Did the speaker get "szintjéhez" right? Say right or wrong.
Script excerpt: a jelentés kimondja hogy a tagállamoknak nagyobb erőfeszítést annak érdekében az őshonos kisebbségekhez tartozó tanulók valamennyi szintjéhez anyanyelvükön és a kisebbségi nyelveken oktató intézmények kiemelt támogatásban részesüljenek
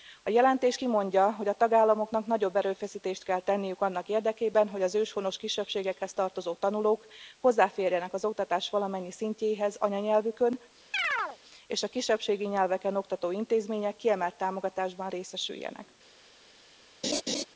right